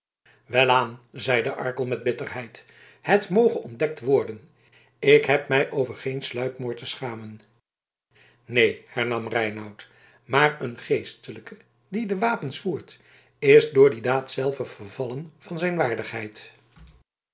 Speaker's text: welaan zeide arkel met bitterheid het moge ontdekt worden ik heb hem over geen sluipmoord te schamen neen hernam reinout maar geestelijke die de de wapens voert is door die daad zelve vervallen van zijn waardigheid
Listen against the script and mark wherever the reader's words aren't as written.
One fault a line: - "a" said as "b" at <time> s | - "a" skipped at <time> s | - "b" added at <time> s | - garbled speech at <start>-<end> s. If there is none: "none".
- "hem" said as "mij" at 5.5 s
- "een" added at 10.6 s
- "de" skipped at 12.2 s